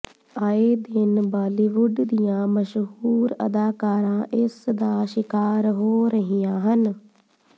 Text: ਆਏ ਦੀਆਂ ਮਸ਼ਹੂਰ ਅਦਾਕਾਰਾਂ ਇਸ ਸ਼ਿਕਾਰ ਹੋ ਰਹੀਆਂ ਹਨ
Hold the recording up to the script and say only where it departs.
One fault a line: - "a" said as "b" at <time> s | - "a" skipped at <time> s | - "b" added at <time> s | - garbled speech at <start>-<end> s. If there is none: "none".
- "ਦਿਨ ਬਾਲੀਵੁੱਡ" added at 0.8 s
- "ਦਾ" added at 4.7 s